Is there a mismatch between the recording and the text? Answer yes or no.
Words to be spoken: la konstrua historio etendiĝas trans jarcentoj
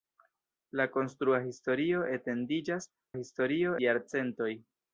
yes